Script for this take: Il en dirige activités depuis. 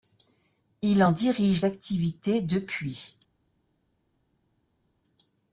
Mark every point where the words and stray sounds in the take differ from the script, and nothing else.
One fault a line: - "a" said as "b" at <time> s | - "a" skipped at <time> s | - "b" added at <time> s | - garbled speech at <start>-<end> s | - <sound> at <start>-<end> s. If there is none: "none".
none